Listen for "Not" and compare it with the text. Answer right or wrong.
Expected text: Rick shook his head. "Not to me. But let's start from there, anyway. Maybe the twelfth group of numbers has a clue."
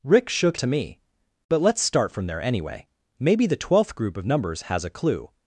wrong